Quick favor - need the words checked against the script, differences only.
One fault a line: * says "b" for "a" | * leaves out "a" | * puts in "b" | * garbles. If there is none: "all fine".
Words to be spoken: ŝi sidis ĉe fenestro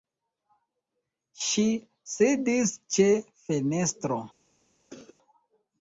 all fine